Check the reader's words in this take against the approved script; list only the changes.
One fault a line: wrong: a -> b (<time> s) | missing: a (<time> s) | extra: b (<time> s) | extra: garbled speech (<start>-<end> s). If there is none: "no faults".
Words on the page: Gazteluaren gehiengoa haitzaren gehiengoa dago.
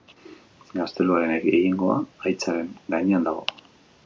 wrong: gehiengoa -> gainean (3.0 s)